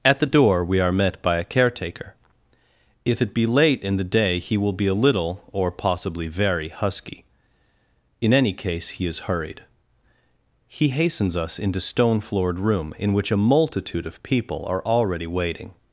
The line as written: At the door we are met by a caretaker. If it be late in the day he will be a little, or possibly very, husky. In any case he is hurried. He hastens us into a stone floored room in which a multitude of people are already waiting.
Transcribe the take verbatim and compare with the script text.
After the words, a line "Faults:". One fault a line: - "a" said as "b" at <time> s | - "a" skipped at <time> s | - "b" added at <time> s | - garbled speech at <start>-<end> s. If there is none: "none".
At the door we are met by a caretaker. If it be late in the day he will be a little, or possibly very, husky. In any case he is hurried. He hastens us into stone floored room in which a multitude of people are already waiting.
Faults:
- "a" skipped at 11.8 s